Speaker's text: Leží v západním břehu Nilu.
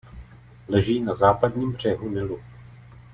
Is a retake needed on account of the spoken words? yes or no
yes